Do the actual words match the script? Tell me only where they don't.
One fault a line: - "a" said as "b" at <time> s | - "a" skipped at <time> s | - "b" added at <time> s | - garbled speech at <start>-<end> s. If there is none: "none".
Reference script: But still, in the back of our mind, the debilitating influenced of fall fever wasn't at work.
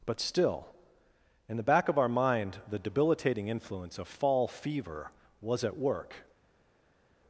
- "influenced" said as "influence" at 3.5 s
- "wasn't" said as "was" at 5.4 s